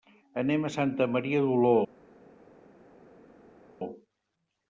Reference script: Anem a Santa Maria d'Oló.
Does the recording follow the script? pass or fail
pass